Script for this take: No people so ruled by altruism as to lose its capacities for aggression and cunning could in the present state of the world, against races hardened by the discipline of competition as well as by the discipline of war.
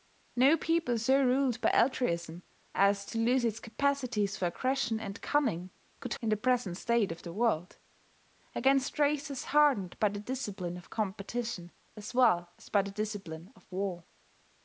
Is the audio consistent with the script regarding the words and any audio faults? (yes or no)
yes